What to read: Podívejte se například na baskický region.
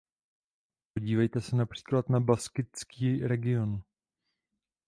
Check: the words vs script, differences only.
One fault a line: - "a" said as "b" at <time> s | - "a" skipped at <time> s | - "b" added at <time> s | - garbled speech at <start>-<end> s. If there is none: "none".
none